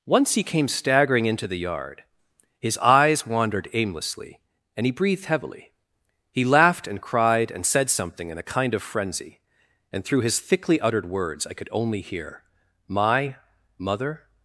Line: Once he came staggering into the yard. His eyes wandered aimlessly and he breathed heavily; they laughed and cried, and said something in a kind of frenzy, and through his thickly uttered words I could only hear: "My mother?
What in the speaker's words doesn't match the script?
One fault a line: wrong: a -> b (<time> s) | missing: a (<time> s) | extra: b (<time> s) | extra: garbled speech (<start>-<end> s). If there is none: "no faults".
wrong: they -> he (6.3 s)